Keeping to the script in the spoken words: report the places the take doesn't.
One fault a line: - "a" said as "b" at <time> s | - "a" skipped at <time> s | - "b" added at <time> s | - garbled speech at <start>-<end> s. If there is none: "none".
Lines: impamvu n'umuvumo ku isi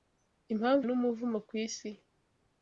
none